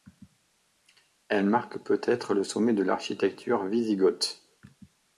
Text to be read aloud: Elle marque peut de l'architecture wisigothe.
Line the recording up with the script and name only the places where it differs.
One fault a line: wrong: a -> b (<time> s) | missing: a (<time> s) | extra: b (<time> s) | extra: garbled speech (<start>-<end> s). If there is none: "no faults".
extra: être le sommet (2.0 s)